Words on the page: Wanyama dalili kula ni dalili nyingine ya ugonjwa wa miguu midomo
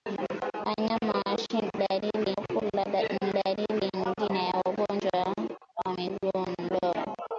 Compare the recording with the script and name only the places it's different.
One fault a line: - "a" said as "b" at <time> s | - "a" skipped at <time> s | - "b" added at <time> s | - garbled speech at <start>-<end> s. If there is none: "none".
none